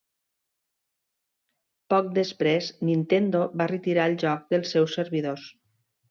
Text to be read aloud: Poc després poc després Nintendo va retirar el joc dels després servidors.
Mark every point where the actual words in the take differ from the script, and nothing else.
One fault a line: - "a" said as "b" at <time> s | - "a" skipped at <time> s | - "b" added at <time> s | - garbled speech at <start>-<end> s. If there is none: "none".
- "poc després" skipped at 2.7 s
- "després" said as "seus" at 4.8 s